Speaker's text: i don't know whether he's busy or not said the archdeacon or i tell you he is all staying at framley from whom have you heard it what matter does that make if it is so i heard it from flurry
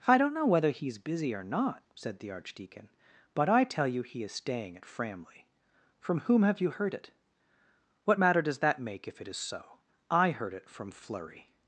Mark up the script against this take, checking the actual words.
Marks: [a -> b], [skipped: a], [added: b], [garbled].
i don't know whether he's busy or not said the archdeacon [or -> but] i tell you he is [skipped: all] staying at framley from whom have you heard it what matter does that make if it is so i heard it from flurry